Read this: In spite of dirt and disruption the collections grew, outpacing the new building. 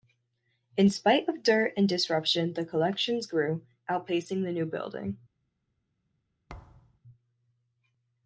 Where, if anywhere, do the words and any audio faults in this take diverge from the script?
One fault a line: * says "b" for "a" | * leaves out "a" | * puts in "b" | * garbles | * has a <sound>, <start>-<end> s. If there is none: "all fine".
* has a thud, 6.5-7.0 s